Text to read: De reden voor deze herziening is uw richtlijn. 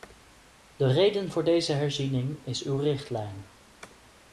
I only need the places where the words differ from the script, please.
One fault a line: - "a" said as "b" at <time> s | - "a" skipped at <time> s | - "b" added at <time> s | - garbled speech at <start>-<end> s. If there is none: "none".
none